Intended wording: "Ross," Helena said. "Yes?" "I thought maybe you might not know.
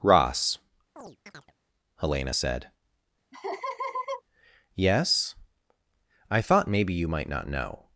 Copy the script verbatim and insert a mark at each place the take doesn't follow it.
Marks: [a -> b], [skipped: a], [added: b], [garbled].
"Ross," Helena said. "Yes?" "I thought maybe you might not know.